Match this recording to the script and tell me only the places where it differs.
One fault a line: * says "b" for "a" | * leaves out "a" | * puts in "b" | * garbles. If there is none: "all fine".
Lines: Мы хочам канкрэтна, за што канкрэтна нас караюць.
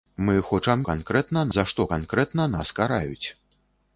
all fine